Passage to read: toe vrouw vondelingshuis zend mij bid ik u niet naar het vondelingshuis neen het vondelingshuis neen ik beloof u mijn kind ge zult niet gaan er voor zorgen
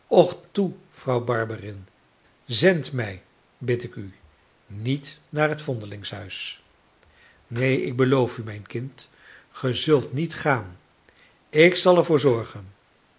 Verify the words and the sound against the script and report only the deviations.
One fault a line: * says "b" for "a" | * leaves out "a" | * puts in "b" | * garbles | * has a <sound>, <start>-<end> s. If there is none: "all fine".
* says "barberin" for "vondelingshuis"
* leaves out "het vondelingshuis neen"
* puts in "ik zal"